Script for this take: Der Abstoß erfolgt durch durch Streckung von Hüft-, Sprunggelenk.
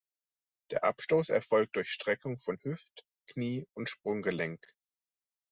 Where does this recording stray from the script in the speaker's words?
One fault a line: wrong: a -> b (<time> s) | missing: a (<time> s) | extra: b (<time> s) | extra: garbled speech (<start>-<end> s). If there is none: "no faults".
missing: durch (1.9 s)
extra: Knie und (3.3 s)